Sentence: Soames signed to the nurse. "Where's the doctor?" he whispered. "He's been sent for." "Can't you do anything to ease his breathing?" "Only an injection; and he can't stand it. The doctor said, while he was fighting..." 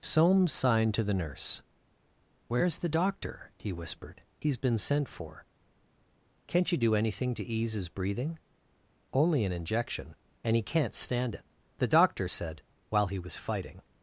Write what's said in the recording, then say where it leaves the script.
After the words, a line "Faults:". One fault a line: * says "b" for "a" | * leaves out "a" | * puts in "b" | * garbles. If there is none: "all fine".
Soames signed to the nurse. "Where's the doctor?" he whispered. "He's been sent for." "Can't you do anything to ease his breathing?" "Only an injection; and he can't stand it. The doctor said, while he was fighting..."
Faults:
all fine